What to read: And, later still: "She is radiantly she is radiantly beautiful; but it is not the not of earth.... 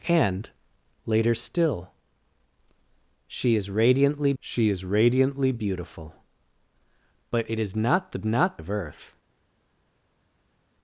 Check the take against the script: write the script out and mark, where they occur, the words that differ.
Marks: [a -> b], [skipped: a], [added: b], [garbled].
And, later still: "She is radiantly she is radiantly beautiful; but it is not the not of earth....